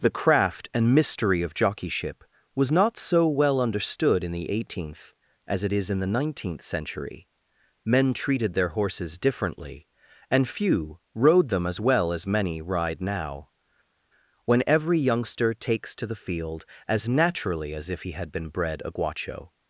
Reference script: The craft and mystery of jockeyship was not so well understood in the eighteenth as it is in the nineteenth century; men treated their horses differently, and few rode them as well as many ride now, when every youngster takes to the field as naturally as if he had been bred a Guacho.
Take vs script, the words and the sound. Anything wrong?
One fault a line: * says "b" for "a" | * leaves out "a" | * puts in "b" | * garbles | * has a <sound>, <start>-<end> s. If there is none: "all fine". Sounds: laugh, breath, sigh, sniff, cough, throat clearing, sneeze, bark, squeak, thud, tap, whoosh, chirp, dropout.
all fine